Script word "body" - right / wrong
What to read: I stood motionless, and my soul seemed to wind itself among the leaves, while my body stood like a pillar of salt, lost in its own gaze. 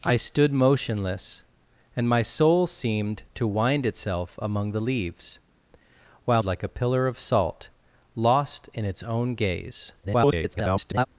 wrong